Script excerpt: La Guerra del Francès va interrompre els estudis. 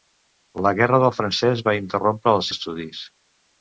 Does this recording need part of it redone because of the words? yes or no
no